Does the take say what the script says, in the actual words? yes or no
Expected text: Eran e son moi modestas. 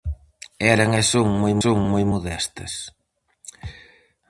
no